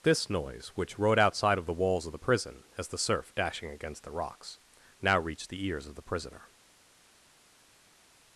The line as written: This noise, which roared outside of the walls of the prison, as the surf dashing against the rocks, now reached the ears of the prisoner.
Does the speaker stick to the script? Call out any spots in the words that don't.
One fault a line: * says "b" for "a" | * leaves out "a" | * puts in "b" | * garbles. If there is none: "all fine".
* says "rode" for "roared"